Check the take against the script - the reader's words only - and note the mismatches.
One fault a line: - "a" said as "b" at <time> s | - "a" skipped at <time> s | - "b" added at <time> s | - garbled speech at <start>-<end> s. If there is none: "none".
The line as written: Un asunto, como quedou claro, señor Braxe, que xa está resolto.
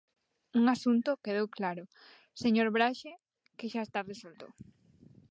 - "como" skipped at 1.1 s